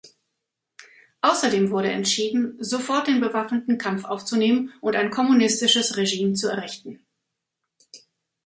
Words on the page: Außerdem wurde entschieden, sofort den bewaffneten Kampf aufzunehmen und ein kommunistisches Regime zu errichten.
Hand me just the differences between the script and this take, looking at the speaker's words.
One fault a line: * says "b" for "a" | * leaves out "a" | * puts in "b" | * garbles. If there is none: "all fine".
all fine